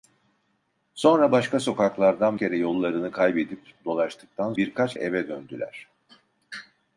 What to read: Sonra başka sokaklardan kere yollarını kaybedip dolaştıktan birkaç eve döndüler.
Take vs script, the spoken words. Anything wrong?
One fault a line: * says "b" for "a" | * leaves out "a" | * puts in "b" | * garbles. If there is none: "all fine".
all fine